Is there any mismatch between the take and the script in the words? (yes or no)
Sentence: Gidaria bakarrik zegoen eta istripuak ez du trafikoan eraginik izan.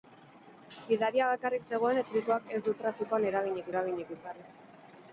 yes